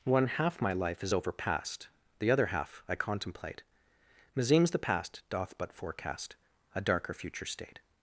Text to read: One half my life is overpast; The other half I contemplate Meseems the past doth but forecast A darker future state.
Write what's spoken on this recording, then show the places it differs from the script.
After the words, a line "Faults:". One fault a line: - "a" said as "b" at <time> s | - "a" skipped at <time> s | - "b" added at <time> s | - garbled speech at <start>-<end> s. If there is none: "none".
One half my life is overpast; The other half I contemplate Meseems the past doth but forecast A darker future state.
Faults:
none